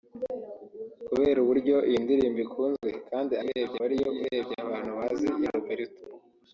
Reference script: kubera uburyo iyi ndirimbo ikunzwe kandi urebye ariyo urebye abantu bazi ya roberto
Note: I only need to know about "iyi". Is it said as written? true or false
true